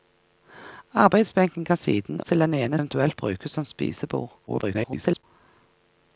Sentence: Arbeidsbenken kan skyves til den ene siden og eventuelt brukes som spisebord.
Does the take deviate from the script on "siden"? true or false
true